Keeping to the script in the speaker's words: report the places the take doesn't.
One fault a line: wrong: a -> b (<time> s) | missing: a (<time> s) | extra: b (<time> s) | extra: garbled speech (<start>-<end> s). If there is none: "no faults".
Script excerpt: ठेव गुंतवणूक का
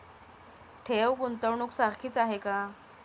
extra: सारखीच आहे (1.7 s)